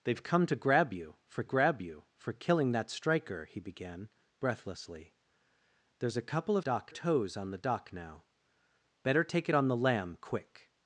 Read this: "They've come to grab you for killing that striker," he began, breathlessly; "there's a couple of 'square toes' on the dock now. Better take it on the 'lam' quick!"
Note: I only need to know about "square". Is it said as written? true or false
false